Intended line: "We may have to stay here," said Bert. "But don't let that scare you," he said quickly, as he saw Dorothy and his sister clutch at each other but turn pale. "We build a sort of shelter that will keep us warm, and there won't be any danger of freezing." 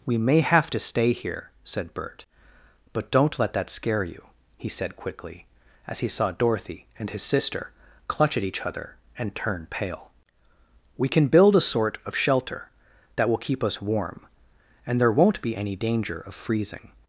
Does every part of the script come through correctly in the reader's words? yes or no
no